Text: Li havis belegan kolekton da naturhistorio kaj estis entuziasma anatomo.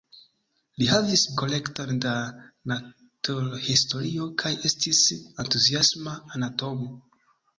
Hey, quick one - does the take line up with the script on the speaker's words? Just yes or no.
no